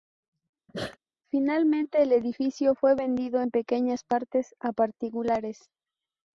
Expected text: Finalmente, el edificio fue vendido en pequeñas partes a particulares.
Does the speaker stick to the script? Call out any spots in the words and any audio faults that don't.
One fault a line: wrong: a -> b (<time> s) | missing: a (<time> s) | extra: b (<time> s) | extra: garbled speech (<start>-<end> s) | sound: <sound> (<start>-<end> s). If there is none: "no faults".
sound: sneeze (0.7-1.0 s)